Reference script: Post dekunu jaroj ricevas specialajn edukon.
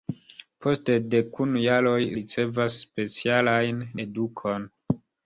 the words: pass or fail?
pass